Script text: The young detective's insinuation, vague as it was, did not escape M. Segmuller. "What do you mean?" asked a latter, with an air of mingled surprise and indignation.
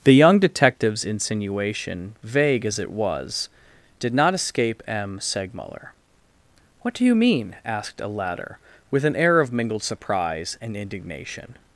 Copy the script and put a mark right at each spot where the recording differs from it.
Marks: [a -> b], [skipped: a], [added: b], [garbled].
The young detective's insinuation, vague as it was, did not escape M. Segmuller. "What do you mean?" asked a latter, with an air of mingled surprise and indignation.